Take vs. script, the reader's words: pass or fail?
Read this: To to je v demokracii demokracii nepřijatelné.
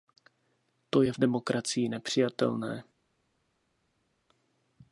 fail